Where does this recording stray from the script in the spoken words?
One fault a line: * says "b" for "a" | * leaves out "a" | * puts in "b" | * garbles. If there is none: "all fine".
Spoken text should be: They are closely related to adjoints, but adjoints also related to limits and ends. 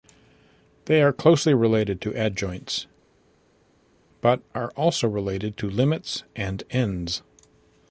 * says "are" for "adjoints"